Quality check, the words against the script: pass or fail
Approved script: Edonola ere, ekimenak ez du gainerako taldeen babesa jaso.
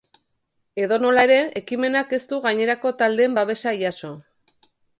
pass